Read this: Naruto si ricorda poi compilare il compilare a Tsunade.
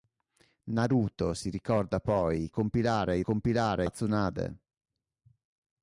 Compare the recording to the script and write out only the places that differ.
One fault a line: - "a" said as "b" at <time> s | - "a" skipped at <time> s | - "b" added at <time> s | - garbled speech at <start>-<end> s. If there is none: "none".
none